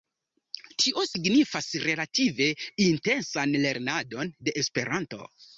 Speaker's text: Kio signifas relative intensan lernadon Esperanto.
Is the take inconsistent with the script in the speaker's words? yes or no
yes